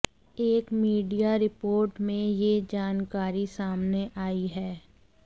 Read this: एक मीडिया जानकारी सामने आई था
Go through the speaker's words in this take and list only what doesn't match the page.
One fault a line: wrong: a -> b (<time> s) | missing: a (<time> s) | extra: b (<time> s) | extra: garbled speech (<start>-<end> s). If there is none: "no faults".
extra: रिपोर्ट में यह (1.4 s)
wrong: था -> है (4.5 s)